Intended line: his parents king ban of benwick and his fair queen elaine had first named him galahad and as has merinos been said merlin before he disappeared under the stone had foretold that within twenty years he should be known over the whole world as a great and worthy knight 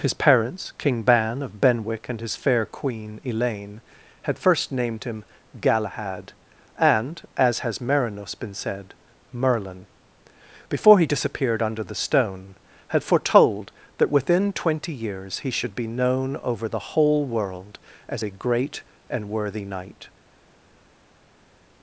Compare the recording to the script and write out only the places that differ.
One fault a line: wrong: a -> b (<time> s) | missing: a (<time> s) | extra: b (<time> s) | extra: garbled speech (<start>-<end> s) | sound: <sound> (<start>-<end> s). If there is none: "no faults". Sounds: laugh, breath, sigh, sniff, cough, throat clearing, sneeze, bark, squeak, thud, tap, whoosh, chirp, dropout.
no faults